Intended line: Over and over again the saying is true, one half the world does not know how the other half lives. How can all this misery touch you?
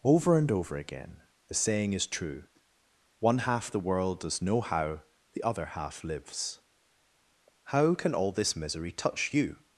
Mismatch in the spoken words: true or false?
true